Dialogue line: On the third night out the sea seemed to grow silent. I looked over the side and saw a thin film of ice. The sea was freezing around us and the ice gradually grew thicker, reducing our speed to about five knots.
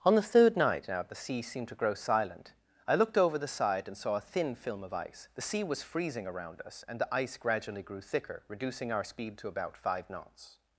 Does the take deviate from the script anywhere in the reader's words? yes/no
yes